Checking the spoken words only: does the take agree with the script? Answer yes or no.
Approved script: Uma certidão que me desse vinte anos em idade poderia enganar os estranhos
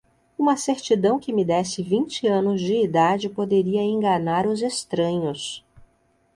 no